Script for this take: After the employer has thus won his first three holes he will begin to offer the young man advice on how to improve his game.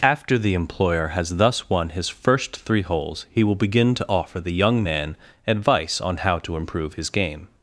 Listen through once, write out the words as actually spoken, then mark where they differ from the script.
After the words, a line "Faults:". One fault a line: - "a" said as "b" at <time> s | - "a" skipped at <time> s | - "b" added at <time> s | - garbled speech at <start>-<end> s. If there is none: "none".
After the employer has thus won his first three holes he will begin to offer the young man advice on how to improve his game.
Faults:
none